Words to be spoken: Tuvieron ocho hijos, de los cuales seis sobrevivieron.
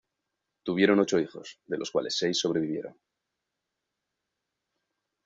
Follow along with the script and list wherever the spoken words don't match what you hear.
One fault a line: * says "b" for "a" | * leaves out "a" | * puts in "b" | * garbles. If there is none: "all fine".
all fine